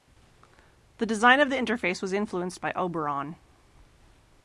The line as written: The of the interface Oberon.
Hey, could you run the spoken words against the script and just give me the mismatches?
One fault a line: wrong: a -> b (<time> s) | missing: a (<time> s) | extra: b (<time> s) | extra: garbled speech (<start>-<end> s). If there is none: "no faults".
extra: design (1.1 s)
extra: was influenced by (2.0 s)